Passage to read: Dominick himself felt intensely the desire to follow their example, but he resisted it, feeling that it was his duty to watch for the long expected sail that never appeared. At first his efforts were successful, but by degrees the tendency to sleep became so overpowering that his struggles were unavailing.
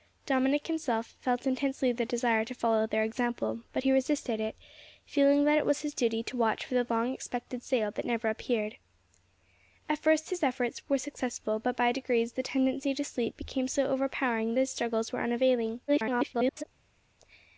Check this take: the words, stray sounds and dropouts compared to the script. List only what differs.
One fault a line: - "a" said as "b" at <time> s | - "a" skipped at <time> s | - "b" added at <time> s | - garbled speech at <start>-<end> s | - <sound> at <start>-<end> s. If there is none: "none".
- "that" skipped at 14.5 s
- garbled speech at 15.9-16.6 s